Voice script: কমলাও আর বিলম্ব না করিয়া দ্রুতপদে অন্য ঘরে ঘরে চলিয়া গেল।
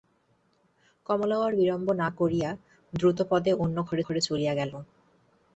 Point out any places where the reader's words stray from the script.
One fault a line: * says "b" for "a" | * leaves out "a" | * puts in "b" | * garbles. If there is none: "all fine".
all fine